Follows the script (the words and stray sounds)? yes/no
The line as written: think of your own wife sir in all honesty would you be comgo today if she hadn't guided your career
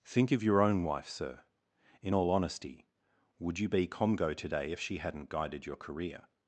yes